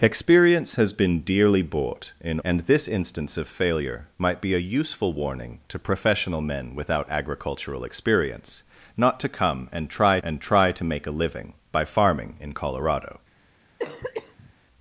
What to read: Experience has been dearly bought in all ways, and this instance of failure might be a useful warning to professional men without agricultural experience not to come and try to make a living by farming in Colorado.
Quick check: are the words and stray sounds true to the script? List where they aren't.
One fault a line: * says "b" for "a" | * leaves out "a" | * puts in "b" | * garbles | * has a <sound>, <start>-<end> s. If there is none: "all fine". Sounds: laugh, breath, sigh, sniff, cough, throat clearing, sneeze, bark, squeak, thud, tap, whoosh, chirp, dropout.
* leaves out "all ways"
* puts in "and try"
* has a cough, 13.8-14.5 s